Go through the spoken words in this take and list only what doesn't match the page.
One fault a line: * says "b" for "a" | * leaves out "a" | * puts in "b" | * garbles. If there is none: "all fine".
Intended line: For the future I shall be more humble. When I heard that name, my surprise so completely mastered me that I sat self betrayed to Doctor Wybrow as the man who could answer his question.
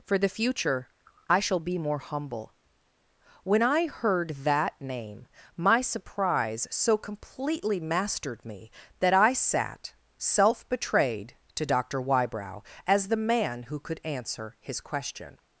all fine